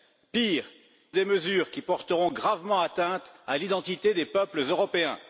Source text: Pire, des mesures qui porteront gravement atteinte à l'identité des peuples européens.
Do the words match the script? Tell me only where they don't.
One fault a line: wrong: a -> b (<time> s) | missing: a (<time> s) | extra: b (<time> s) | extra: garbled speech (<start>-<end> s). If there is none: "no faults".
no faults